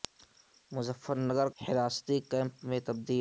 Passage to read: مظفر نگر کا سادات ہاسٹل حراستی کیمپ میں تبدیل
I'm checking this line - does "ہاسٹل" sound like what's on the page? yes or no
no